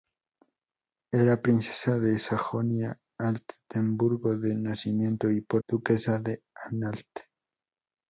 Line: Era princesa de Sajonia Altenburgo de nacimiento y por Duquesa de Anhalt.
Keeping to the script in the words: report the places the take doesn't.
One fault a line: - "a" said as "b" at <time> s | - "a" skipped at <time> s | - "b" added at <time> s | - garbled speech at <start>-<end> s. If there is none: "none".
none